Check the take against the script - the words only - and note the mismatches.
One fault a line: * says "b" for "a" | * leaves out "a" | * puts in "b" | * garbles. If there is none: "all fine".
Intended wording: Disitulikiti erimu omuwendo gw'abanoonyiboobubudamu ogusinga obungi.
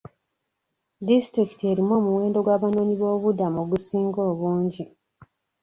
all fine